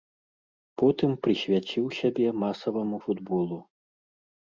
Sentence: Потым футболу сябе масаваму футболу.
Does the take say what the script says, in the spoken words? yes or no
no